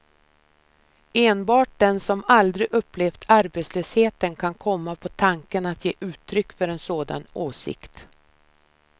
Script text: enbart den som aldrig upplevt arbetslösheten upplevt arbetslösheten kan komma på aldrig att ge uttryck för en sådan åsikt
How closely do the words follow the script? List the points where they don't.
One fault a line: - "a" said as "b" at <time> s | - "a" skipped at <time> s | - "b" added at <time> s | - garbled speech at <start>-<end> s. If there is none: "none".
- "upplevt arbetslösheten" skipped at 4.3 s
- "aldrig" said as "tanken" at 5.1 s